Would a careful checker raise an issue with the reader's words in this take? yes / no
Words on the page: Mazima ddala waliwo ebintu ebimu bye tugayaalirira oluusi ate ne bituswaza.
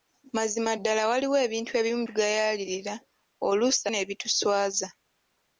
yes